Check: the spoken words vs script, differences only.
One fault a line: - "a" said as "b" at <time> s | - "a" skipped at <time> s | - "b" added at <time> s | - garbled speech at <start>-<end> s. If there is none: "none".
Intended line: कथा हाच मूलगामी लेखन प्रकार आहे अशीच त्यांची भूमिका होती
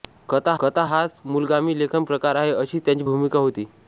- "कथा" added at 0.6 s